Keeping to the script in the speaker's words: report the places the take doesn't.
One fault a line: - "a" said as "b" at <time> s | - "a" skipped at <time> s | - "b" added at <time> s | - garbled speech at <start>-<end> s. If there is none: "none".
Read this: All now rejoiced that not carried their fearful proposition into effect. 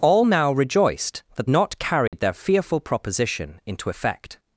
none